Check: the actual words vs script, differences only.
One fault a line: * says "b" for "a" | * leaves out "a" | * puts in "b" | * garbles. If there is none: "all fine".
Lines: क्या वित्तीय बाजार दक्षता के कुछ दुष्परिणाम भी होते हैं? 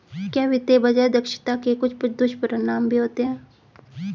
all fine